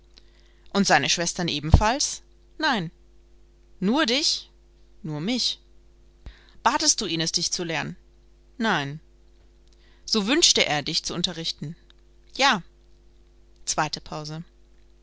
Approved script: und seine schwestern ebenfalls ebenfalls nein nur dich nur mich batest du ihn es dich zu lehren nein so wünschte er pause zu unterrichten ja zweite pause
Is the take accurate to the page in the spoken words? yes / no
no